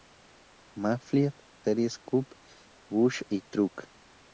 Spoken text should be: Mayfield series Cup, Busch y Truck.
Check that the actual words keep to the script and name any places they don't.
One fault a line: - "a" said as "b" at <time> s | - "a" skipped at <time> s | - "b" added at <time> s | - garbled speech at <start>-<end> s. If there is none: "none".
none